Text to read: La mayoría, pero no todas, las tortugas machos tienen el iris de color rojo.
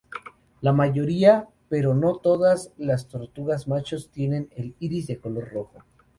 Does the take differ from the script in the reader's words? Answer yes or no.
no